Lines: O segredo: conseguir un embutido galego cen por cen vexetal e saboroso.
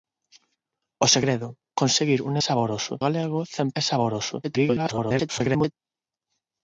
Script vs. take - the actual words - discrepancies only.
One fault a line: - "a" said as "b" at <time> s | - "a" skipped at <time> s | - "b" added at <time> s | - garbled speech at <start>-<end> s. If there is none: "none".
- "embutido" said as "saboroso" at 2.5 s
- "por cen vexetal" skipped at 3.7 s
- garbled speech at 4.4-5.7 s